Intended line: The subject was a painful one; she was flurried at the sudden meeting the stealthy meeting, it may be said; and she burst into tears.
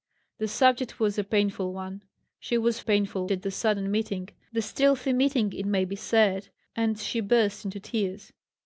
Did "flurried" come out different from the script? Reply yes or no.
yes